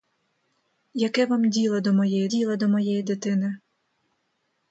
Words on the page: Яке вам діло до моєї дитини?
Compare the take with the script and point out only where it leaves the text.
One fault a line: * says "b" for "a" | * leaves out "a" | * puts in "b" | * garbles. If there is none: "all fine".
* puts in "діло до моєї"